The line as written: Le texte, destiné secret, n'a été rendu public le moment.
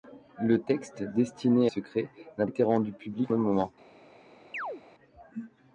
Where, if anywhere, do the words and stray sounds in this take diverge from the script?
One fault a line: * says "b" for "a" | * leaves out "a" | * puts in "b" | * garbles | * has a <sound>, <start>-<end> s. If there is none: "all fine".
* has a chirp, 4.5-4.8 s